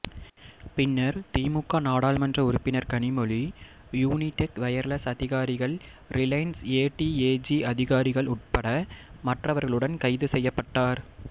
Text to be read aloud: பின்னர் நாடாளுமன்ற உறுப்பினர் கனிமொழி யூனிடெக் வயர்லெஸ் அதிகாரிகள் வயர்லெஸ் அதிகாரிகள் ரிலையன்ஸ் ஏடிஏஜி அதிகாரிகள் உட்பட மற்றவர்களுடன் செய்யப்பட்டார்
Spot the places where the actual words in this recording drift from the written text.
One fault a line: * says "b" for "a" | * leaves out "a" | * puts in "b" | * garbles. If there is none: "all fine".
* puts in "திமுக"
* leaves out "வயர்லெஸ் அதிகாரிகள்"
* puts in "கைது"